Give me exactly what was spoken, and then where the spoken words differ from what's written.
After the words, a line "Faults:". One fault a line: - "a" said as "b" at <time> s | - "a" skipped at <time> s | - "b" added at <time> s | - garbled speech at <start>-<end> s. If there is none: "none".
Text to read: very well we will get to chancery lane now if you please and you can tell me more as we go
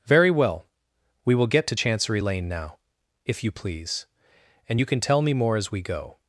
very well we will get to chancery lane now if you please and you can tell me more as we go
Faults:
none